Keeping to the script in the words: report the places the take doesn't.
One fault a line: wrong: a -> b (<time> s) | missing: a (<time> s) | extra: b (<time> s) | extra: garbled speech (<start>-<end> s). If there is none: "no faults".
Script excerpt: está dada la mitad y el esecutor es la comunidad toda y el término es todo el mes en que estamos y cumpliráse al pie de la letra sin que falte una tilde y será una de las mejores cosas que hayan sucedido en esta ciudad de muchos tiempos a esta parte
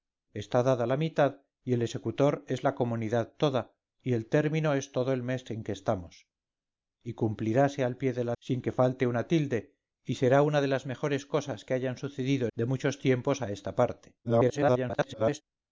missing: letra (8.3 s)
missing: en esta ciudad (12.5 s)
extra: garbled speech (14.2-15.4 s)